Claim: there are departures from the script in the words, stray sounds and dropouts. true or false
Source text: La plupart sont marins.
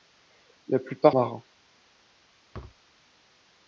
true